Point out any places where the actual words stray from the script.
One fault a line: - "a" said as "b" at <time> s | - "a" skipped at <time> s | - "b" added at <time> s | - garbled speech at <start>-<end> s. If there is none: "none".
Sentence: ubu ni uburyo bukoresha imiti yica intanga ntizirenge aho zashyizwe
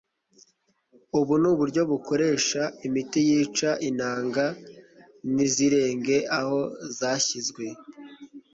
none